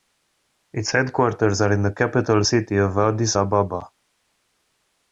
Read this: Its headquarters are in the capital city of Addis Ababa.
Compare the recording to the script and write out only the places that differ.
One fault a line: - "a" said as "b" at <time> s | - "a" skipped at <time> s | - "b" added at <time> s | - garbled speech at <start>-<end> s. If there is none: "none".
none